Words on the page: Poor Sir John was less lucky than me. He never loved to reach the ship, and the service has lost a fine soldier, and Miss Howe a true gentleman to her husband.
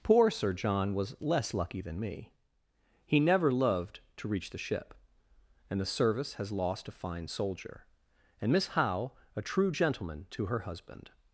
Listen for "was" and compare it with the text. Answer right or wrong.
right